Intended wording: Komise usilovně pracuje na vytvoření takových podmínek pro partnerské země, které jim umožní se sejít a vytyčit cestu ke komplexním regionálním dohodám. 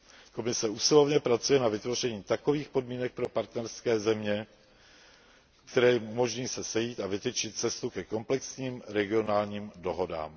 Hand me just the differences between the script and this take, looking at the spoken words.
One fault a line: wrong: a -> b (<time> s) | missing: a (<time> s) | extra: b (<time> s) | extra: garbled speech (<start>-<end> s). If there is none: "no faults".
no faults